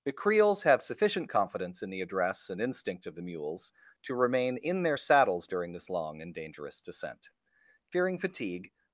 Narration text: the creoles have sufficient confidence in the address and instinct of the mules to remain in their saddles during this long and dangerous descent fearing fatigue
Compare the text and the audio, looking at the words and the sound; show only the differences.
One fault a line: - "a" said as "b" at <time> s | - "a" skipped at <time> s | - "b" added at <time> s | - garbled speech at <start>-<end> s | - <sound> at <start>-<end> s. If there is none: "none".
none